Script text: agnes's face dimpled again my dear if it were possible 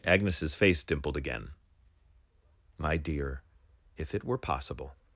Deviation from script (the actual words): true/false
false